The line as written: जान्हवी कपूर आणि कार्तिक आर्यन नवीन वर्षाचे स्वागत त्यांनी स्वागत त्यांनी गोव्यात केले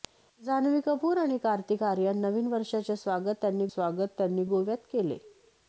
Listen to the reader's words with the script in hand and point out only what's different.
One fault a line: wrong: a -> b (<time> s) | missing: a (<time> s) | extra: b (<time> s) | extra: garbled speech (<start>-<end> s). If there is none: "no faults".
no faults